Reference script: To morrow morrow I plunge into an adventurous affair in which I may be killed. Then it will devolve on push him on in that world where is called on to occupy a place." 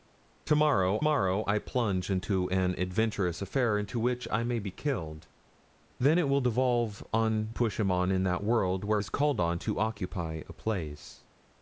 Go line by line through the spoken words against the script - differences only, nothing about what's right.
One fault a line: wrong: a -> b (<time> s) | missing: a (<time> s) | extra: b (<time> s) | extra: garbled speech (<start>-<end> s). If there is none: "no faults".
no faults